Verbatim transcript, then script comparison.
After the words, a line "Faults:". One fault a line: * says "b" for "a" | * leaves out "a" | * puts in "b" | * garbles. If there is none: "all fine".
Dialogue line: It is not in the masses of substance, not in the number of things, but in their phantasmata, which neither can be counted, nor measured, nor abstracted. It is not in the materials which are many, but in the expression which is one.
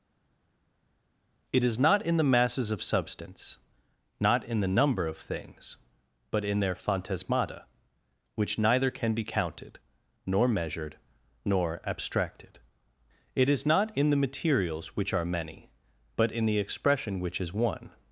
It is not in the masses of substance, not in the number of things, but in their phantasmata, which neither can be counted, nor measured, nor abstracted. It is not in the materials which are many, but in the expression which is one.
Faults:
all fine